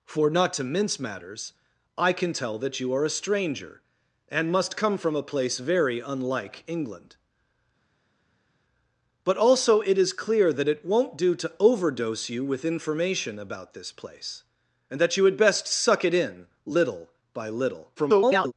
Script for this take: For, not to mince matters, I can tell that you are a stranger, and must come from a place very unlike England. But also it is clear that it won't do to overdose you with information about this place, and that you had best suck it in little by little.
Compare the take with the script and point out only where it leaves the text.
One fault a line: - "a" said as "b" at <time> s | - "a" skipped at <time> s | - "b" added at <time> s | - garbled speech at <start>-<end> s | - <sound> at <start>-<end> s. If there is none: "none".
- garbled speech at 18.0-18.5 s